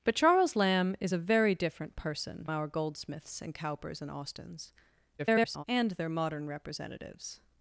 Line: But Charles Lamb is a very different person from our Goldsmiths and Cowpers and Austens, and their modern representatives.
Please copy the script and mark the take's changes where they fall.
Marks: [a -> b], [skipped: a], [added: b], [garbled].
But Charles Lamb is a very different person [skipped: from] our Goldsmiths and Cowpers and Austens, [garbled] and their modern representatives.